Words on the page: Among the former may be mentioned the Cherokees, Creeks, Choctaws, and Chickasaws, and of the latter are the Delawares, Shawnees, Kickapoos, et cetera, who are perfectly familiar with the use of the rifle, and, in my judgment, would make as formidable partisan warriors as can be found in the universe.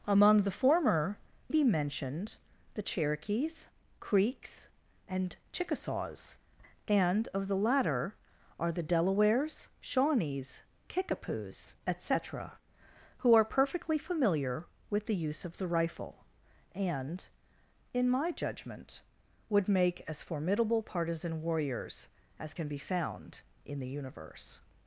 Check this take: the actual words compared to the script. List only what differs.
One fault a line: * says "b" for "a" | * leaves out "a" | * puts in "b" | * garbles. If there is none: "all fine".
* leaves out "may"
* leaves out "Choctaws"